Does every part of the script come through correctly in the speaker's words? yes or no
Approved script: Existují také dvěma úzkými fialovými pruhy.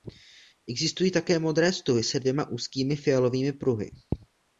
no